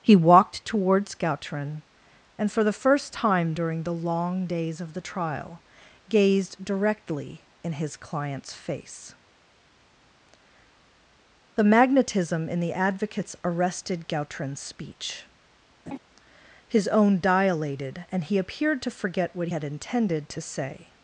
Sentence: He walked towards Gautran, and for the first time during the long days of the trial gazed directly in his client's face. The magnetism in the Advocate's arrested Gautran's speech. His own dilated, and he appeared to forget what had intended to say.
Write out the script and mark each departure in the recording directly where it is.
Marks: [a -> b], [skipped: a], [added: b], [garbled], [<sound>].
He walked towards Gautran, and for the first time during the long days of the trial gazed directly in his client's face. The magnetism in the Advocate's arrested Gautran's speech. [laugh] His own dilated, and he appeared to forget what had intended to say.